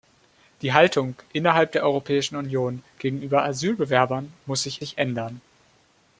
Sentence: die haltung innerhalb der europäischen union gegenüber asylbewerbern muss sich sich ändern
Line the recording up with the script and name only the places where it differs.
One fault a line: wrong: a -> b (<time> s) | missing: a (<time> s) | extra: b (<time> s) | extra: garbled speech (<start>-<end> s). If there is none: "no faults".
no faults